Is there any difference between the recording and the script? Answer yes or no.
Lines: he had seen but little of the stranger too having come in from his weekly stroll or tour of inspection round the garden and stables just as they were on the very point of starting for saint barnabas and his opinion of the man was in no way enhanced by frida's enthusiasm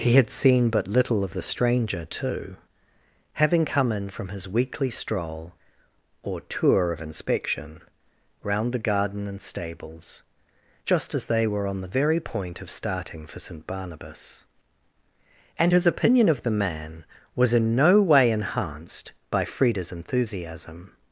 no